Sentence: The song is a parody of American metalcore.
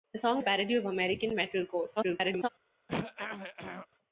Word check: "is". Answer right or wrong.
wrong